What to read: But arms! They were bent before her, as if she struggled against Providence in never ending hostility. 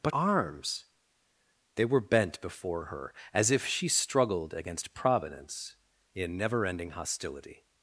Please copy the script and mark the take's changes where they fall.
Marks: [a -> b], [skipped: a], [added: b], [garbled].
But arms! They were bent before her, as if she struggled against Providence in never ending hostility.